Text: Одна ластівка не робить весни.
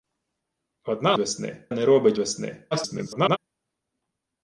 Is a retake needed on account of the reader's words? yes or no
yes